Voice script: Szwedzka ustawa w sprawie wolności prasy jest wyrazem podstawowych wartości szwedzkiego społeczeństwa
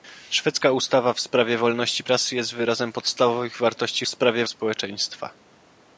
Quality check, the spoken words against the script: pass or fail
fail